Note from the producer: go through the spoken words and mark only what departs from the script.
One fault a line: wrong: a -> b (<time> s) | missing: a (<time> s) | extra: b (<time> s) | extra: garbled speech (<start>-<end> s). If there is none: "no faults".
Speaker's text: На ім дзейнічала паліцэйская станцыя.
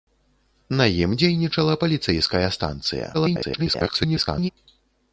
extra: garbled speech (3.1-4.5 s)